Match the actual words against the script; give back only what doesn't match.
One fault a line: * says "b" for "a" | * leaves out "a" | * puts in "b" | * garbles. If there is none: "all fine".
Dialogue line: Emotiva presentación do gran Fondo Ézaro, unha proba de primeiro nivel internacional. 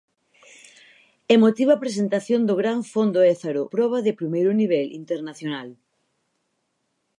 * leaves out "unha"